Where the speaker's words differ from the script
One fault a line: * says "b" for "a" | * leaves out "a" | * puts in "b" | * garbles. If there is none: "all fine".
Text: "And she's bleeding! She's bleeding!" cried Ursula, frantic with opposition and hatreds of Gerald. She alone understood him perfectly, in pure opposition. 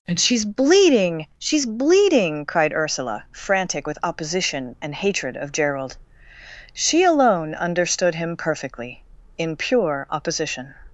* says "hatred" for "hatreds"